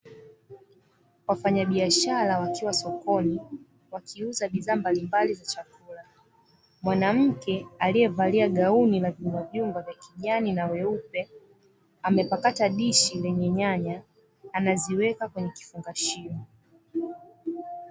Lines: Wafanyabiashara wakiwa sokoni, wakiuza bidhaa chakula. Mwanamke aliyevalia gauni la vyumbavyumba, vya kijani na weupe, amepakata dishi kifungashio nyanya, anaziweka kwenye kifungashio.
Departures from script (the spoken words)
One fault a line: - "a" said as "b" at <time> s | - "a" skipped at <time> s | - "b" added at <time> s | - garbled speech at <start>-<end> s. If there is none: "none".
- "mbalimbali za" added at 4.8 s
- "kifungashio" said as "lenye" at 13.2 s